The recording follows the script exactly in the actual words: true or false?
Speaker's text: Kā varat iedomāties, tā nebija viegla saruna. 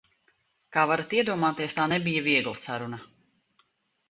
true